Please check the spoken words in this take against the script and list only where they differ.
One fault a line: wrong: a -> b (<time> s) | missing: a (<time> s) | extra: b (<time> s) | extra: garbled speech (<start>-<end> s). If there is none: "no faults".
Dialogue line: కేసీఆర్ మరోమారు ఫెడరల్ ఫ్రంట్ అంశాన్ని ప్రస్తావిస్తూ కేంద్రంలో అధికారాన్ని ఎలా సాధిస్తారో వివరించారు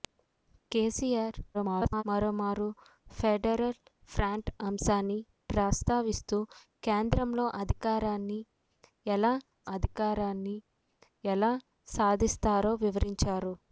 extra: garbled speech (1.5-2.0 s)
extra: అధికారాన్ని ఎలా (9.8 s)